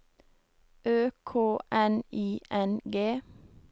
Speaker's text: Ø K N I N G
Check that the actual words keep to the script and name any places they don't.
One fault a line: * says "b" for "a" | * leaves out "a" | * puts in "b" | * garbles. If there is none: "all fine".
all fine